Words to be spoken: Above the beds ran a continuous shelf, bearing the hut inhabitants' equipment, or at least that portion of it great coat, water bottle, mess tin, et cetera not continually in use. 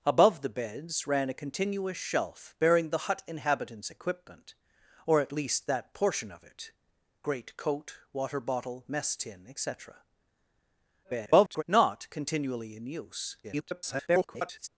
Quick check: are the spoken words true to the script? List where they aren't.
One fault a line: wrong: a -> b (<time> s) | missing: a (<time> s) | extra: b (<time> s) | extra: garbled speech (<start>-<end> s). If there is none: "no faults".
extra: garbled speech (11.0-11.6 s)
extra: garbled speech (13.4-14.7 s)